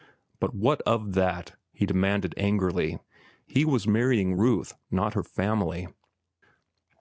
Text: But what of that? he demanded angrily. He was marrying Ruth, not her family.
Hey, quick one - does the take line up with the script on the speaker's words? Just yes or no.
yes